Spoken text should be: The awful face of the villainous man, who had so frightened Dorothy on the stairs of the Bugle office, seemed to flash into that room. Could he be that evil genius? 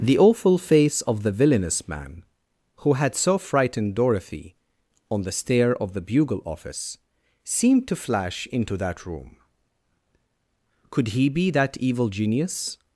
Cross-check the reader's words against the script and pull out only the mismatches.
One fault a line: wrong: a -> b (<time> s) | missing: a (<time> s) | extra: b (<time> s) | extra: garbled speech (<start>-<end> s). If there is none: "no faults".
wrong: stairs -> stair (5.3 s)